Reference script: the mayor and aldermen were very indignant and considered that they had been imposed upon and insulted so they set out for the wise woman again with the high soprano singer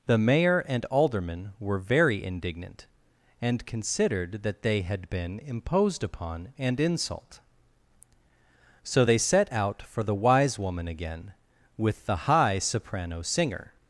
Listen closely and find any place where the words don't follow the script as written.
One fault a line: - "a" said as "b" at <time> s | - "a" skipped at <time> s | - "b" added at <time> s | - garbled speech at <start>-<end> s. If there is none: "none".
- "insulted" said as "insult" at 6.8 s